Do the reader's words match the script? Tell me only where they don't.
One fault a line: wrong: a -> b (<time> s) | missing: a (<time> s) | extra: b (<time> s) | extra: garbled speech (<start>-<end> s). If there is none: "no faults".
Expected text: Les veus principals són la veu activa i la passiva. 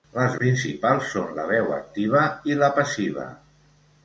missing: veus (0.4 s)